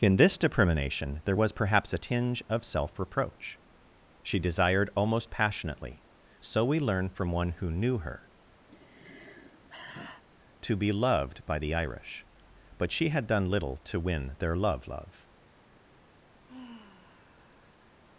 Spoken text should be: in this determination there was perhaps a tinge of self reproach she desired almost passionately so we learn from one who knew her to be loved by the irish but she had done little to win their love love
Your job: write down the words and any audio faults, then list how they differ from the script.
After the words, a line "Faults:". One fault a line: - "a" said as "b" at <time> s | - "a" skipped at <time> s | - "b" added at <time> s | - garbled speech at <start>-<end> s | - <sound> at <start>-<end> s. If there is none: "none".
in this determination there was perhaps a tinge of self reproach she desired almost passionately so we learn from one who knew her to be loved by the irish but she had done little to win their love love
Faults:
- sigh at 8.7-10.2 s
- sigh at 16.4-18.0 s